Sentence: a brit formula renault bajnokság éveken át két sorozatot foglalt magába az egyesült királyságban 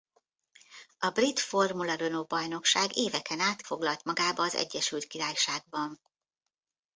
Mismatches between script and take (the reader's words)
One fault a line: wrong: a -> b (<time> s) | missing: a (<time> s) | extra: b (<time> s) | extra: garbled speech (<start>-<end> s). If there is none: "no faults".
missing: két sorozatot (3.6 s)